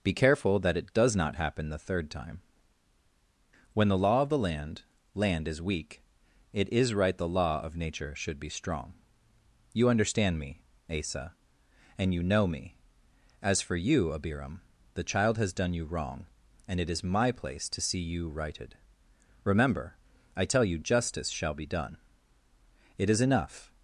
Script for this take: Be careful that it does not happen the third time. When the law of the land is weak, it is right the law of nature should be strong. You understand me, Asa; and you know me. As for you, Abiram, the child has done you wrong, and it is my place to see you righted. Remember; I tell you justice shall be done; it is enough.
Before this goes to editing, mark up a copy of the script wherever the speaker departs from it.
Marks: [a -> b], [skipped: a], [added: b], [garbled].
Be careful that it does not happen the third time. When the law of the land [added: land] is weak, it is right the law of nature should be strong. You understand me, Asa; and you know me. As for you, Abiram, the child has done you wrong, and it is my place to see you righted. Remember; I tell you justice shall be done; it is enough.